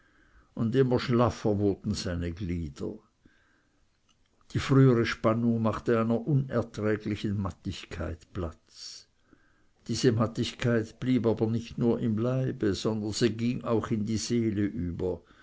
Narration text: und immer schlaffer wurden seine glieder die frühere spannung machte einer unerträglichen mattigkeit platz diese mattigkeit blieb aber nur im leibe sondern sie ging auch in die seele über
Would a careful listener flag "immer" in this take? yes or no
no